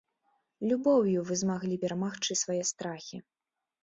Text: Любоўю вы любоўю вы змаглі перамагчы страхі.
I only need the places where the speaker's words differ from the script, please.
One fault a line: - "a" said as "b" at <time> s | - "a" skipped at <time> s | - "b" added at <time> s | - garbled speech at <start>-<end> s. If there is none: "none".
- "любоўю вы" skipped at 1.4 s
- "свае" added at 2.4 s